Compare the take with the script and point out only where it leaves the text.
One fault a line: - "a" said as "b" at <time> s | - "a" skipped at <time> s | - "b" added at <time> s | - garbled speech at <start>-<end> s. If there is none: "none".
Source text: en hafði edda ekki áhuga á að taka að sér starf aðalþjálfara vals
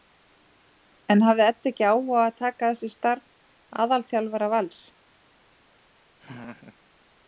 none